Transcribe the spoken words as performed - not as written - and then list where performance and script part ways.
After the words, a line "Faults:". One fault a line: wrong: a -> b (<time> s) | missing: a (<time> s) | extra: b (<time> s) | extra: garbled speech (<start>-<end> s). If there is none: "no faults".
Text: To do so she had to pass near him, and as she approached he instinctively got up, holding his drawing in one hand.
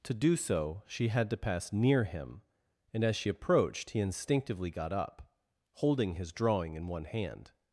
To do so she had to pass near him, and as she approached he instinctively got up, holding his drawing in one hand.
Faults:
no faults